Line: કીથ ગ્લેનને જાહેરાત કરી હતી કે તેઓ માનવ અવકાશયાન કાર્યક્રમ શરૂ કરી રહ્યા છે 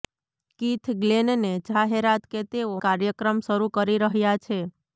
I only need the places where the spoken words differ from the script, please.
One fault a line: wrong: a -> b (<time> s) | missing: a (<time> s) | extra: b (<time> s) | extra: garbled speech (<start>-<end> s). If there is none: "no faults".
missing: કરી હતી (2.2 s)
missing: માનવ અવકાશયાન (2.7 s)